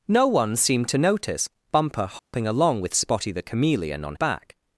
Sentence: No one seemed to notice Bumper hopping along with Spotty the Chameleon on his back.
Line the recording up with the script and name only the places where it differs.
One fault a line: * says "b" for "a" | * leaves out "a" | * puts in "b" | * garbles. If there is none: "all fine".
* leaves out "his"